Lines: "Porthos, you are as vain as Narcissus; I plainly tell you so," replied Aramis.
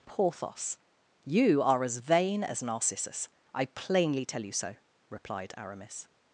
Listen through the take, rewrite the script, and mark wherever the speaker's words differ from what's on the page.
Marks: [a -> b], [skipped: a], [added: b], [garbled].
"Porthos, you are as vain as Narcissus; I plainly tell you so," replied Aramis.